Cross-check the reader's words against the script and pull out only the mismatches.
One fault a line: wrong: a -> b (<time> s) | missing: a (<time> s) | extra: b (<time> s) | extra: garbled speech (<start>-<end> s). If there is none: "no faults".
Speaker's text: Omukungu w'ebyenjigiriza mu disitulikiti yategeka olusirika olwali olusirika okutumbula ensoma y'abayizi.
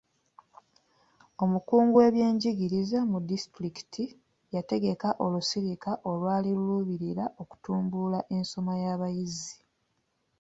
wrong: olusirika -> luluubirira (6.6 s)